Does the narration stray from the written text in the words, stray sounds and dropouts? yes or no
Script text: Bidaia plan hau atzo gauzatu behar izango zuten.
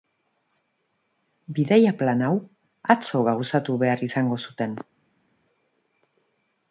no